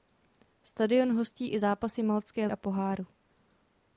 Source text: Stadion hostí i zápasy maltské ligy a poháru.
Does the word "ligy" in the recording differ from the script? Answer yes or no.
yes